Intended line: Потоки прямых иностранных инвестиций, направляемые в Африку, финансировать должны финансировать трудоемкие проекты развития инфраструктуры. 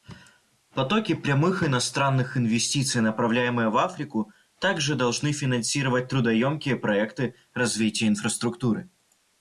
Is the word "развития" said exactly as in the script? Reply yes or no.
yes